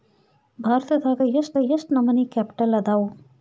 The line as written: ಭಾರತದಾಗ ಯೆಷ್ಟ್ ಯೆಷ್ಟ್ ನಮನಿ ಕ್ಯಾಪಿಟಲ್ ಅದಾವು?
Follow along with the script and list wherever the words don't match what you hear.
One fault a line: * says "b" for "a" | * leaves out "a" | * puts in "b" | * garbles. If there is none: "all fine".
all fine